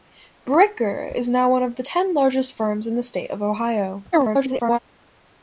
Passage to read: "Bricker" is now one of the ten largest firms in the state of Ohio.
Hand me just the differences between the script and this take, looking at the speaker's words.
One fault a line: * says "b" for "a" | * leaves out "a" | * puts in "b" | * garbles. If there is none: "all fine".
* garbles